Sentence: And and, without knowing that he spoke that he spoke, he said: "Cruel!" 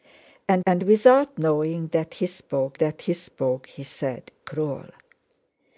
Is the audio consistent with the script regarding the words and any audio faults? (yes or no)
yes